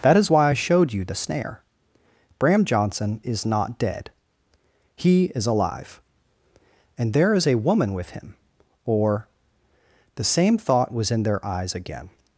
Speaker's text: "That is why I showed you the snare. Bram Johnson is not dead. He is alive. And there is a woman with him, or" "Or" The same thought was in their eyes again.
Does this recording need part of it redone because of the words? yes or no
yes